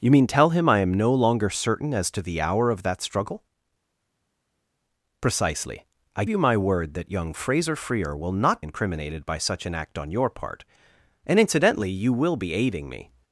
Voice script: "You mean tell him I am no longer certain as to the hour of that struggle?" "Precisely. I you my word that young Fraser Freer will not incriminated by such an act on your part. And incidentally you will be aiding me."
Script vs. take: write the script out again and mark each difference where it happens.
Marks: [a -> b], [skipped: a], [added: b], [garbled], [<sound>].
"You mean tell him I am no longer certain as to the hour of that struggle?" "Precisely. I you my word that young Fraser Freer will not incriminated by such an act on your part. And incidentally you will be aiding me."